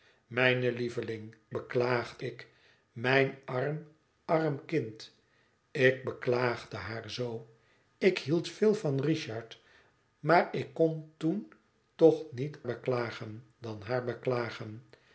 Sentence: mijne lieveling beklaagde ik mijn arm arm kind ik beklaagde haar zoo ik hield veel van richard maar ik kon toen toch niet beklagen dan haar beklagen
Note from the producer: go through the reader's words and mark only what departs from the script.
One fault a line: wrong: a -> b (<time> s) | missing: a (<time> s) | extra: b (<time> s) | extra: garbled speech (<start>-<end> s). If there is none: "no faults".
no faults